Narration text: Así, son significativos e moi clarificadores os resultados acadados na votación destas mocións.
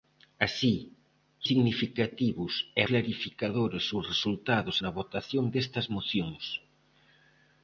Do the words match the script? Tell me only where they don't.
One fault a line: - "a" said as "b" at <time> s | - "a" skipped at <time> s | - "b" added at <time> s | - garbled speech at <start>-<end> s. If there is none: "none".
- "son" skipped at 0.8 s
- "moi" skipped at 2.8 s
- "acadados" skipped at 4.8 s